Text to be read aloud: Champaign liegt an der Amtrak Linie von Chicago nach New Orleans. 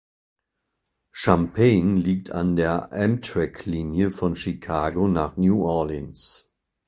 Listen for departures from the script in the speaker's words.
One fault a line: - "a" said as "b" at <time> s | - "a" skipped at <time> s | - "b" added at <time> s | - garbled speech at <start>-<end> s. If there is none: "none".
none